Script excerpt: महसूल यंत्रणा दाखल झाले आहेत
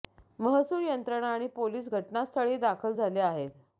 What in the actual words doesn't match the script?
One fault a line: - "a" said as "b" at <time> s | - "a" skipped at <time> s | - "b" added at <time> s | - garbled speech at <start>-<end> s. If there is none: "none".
- "आणि पोलीस घटनास्थळी" added at 1.3 s